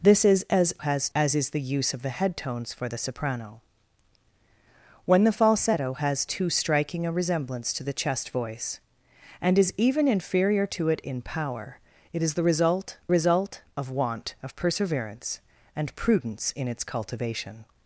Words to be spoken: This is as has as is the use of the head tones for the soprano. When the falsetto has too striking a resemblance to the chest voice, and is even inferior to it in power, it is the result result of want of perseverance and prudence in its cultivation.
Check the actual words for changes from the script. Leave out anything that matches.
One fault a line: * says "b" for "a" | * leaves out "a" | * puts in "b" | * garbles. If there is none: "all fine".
all fine